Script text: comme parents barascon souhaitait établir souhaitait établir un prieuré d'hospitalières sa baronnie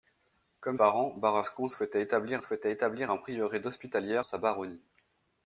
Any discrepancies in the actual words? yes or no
no